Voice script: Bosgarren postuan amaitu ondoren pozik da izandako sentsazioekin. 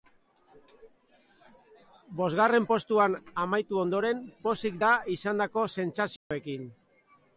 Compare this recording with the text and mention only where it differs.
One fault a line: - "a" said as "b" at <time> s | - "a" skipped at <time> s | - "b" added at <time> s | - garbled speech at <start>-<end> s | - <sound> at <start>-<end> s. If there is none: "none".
- dropout at 6.2-6.3 s